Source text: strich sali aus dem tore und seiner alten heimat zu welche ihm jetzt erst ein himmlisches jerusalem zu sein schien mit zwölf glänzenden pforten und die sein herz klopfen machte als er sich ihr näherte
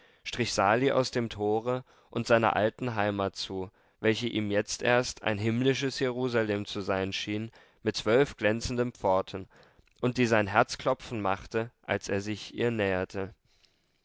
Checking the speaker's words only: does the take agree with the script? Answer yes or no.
yes